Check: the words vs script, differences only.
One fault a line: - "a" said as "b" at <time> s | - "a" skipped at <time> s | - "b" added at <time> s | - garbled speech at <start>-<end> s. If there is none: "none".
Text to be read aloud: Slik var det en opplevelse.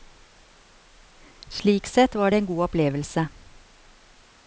- "sett" added at 1.9 s
- "god" added at 2.5 s